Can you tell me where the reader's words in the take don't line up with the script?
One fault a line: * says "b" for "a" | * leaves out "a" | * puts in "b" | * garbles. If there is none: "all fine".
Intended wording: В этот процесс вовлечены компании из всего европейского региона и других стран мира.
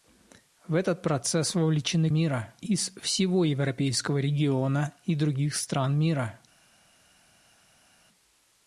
* says "мира" for "компании"